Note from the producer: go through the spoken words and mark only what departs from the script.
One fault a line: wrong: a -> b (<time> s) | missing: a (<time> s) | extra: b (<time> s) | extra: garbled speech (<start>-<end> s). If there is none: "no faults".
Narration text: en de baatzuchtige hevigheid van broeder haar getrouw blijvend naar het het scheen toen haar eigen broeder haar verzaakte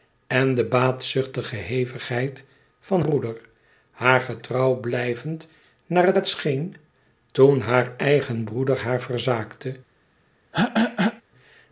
no faults